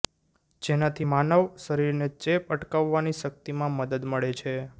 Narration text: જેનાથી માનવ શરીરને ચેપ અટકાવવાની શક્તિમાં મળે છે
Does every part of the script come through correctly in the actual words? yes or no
no